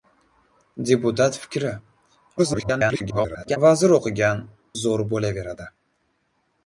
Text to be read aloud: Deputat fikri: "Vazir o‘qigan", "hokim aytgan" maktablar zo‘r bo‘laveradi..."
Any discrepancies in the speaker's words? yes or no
yes